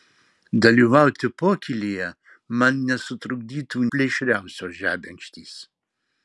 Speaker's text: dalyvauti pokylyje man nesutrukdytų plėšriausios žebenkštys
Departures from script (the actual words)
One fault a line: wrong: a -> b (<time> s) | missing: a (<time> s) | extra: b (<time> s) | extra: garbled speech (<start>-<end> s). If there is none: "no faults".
no faults